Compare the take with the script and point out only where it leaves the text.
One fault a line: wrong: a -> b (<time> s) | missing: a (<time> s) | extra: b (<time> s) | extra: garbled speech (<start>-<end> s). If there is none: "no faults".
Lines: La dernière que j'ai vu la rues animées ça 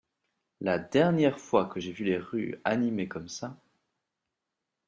extra: fois (1.4 s)
wrong: la -> les (2.0 s)
extra: comme (3.1 s)